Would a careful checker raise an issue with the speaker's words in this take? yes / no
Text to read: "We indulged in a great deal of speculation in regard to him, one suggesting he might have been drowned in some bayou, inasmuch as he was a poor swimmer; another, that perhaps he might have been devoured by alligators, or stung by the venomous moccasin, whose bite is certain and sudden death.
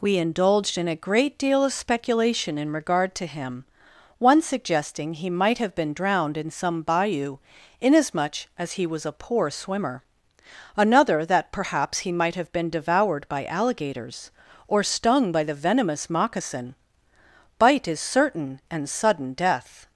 yes